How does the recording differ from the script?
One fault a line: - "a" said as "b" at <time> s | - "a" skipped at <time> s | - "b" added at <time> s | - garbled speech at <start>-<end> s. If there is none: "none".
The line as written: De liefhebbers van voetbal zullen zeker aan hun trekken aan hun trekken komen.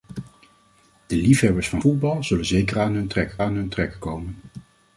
none